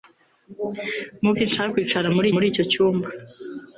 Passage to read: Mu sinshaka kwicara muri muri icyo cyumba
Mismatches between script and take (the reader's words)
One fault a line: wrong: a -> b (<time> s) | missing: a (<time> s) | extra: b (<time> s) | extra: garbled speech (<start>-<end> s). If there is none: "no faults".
no faults